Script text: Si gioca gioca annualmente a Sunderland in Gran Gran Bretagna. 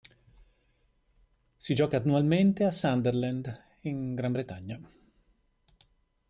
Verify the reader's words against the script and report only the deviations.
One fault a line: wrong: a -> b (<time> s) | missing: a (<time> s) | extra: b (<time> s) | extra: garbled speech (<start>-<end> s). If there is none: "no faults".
missing: gioca (2.0 s)
missing: Gran (4.3 s)